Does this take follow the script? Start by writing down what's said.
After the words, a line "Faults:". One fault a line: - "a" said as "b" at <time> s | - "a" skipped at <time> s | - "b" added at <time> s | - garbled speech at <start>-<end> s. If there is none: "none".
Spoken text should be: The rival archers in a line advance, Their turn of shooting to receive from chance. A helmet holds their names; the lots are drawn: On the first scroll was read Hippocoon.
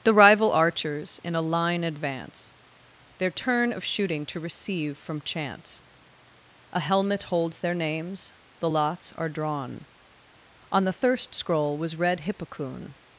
The rival archers in a line advance, Their turn of shooting to receive from chance. A helmet holds their names; the lots are drawn: On the thirst scroll was read Hippocoon.
Faults:
- "first" said as "thirst" at 10.9 s